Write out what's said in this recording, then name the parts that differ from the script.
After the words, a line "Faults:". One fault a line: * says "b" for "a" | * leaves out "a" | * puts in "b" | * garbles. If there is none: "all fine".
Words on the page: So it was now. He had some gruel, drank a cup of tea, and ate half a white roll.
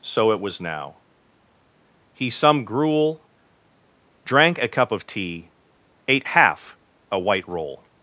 So it was now. He some gruel, drank a cup of tea, ate half a white roll.
Faults:
* leaves out "had"
* leaves out "and"